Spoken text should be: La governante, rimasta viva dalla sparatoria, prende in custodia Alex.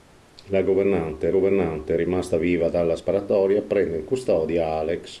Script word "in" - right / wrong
right